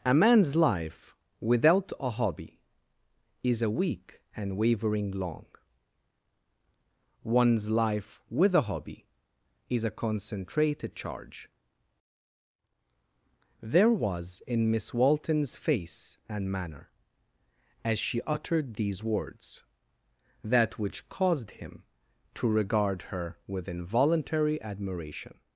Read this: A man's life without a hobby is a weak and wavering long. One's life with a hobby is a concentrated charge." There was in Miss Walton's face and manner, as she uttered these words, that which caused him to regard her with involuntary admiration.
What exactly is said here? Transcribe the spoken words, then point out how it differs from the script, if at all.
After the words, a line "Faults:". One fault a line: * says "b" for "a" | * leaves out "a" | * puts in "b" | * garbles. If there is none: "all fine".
A man's life without a hobby is a weak and wavering long. One's life with a hobby is a concentrated charge." There was in Miss Walton's face and manner, as she uttered these words, that which caused him to regard her with involuntary admiration.
Faults:
all fine